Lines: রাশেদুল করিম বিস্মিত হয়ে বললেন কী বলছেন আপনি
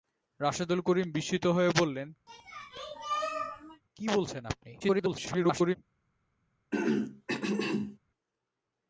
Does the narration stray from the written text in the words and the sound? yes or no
yes